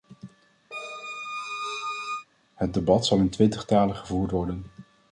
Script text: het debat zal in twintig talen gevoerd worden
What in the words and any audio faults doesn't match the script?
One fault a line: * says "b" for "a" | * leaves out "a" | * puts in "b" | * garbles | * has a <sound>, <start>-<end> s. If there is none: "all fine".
* has a squeak, 0.7-2.3 s